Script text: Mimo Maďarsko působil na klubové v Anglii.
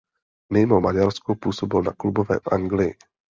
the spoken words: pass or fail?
pass